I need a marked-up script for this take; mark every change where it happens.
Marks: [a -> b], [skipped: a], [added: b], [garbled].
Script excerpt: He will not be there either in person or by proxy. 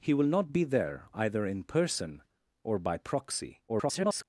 He will not be there either in person or by proxy. [garbled]